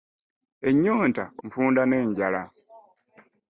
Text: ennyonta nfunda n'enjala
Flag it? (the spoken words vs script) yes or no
no